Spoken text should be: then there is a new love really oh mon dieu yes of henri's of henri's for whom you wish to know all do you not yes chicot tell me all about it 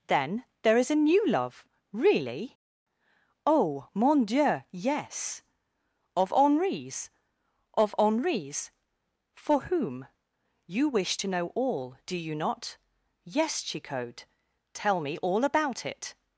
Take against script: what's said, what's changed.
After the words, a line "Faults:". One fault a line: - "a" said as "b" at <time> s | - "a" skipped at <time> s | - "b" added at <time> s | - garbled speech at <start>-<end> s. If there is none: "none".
then there is a new love really oh mon dieu yes of henri's of henri's for whom you wish to know all do you not yes chicot tell me all about it
Faults:
none